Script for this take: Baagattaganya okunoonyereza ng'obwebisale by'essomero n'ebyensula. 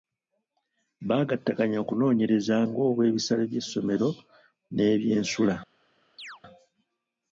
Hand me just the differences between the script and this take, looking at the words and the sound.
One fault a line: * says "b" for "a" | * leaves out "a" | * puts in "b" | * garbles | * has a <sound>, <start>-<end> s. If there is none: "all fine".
* has a chirp, 6.2-6.4 s